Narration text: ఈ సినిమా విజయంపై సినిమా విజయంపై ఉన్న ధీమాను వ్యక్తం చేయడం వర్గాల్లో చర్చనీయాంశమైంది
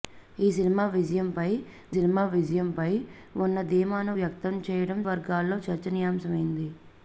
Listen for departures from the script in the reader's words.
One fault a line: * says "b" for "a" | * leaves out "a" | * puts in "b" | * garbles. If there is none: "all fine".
all fine